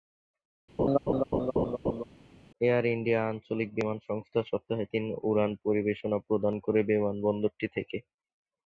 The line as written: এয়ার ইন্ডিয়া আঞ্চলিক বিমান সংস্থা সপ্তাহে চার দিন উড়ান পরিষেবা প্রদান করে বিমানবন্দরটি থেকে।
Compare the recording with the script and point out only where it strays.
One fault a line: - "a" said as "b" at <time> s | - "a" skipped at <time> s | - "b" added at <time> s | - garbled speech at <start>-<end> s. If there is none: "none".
- "চার" skipped at 4.8 s